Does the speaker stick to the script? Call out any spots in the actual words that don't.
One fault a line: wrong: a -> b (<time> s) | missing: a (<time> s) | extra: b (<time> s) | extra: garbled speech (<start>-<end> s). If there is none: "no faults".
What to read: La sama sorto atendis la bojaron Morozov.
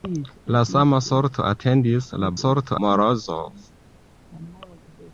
wrong: bojaron -> sorto (2.4 s)